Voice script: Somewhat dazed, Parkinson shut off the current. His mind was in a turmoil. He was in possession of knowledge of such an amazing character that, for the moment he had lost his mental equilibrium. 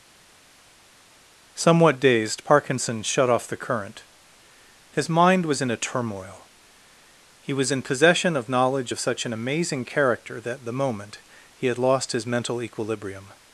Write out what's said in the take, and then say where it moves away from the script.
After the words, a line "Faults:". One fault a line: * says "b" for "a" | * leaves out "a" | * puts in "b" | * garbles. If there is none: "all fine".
Somewhat dazed, Parkinson shut off the current. His mind was in a turmoil. He was in possession of knowledge of such an amazing character that, the moment he had lost his mental equilibrium.
Faults:
* leaves out "for"